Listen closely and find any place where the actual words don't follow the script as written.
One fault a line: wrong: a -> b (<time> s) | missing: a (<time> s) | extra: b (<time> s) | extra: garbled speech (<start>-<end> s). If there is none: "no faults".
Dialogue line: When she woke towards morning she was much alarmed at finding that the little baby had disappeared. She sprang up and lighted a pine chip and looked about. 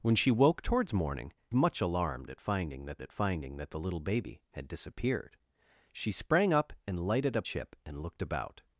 missing: she was (1.3 s)
extra: at finding that (3.0 s)
missing: pine (7.4 s)